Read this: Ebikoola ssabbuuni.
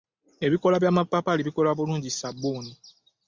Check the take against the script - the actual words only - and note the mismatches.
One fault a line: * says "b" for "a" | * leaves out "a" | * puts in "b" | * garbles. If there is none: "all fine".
* puts in "by'amapaapaali bikola bulungi"